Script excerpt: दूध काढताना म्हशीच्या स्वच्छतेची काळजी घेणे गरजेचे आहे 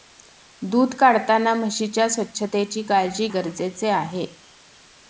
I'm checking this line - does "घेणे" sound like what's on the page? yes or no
no